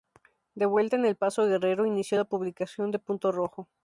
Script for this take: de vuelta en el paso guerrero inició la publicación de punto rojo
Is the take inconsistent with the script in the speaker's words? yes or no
no